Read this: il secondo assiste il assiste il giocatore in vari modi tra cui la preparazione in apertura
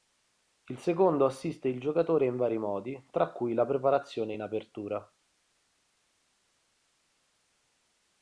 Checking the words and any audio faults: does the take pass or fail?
fail